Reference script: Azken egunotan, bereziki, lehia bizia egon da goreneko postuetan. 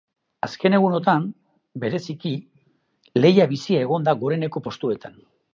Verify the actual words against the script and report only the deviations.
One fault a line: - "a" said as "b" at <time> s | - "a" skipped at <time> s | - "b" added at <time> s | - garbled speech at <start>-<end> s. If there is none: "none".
none